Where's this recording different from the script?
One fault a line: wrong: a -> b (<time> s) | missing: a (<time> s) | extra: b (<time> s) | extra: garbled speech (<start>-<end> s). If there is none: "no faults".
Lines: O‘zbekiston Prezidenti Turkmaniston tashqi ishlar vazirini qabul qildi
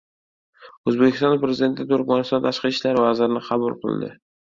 no faults